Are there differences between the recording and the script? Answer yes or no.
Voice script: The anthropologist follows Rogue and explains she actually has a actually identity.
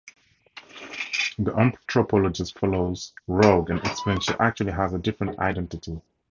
yes